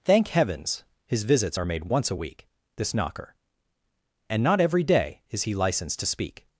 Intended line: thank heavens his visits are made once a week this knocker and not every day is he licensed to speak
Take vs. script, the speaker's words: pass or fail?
pass